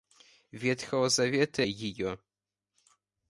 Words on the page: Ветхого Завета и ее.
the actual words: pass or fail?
pass